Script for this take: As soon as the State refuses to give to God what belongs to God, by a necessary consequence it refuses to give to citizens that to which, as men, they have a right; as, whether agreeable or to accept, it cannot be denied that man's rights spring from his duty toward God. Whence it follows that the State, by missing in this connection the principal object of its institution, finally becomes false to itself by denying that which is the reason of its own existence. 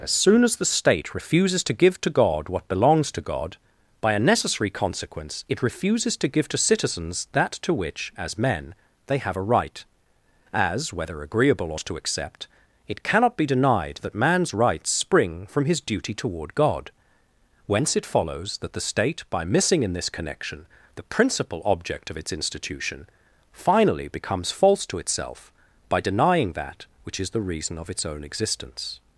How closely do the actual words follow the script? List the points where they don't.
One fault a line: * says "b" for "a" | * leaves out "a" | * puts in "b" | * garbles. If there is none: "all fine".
all fine